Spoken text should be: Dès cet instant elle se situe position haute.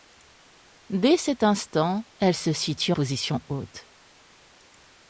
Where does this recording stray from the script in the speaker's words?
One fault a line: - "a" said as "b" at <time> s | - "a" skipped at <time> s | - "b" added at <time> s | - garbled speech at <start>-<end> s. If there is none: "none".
none